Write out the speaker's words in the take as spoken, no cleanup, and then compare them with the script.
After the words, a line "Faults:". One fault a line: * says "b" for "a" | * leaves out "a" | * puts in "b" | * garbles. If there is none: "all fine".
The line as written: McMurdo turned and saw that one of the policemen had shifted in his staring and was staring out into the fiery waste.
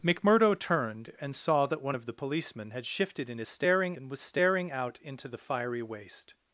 McMurdo turned and saw that one of the policemen had shifted in his staring and was staring out into the fiery waste.
Faults:
all fine